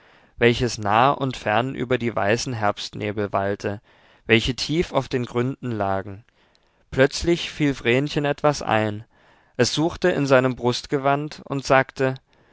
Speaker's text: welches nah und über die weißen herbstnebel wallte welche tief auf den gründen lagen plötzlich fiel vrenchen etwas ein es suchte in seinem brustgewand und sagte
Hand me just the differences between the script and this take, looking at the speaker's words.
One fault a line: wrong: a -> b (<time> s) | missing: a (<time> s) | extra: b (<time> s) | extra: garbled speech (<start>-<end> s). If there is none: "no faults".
extra: fern (1.4 s)